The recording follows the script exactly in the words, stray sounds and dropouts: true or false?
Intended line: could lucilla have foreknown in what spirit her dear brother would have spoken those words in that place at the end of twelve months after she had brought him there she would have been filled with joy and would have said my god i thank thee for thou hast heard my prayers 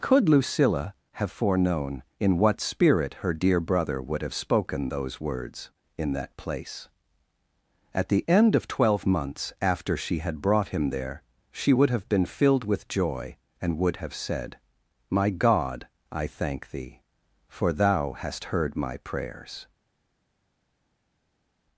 true